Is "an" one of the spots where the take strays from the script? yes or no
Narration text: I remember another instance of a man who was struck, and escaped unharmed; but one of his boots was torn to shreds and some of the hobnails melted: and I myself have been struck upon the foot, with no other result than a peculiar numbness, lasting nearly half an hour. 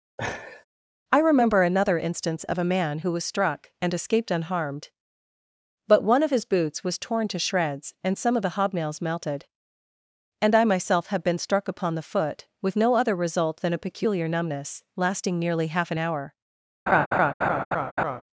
no